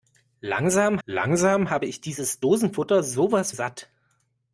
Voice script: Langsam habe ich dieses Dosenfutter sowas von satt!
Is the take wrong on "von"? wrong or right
wrong